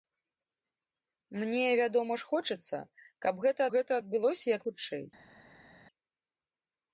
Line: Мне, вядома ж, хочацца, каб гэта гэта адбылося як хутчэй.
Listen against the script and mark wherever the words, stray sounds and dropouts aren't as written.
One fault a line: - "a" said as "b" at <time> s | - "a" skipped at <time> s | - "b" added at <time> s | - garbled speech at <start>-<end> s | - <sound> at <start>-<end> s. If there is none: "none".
none